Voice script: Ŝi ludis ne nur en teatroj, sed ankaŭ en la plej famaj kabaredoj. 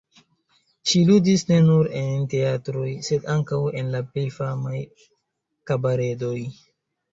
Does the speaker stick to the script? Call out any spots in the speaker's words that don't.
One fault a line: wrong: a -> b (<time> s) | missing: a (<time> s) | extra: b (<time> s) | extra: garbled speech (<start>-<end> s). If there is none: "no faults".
no faults